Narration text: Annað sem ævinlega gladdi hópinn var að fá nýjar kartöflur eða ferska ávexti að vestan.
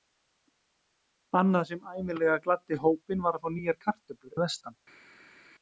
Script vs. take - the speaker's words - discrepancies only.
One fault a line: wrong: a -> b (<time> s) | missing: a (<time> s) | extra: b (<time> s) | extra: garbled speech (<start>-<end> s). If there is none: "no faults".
missing: eða ferska ávexti (4.4 s)